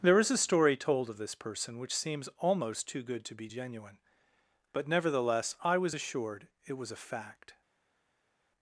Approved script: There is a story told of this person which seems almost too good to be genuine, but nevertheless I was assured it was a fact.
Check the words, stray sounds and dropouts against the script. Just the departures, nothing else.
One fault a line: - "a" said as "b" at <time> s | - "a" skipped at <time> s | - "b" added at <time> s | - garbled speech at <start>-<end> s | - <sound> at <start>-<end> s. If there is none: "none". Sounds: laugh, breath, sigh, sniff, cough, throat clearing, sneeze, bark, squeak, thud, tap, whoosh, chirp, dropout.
none